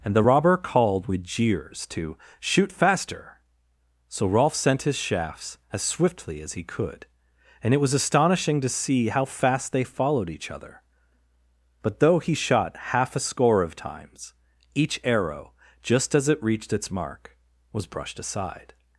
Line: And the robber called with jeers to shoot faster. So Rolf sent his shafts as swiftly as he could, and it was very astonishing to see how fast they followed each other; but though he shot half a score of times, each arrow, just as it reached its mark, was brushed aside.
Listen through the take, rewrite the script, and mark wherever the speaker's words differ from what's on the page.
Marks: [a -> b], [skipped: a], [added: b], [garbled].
And the robber called with jeers to shoot faster. So Rolf sent his shafts as swiftly as he could, and it was [skipped: very] astonishing to see how fast they followed each other; but though he shot half a score of times, each arrow, just as it reached its mark, was brushed aside.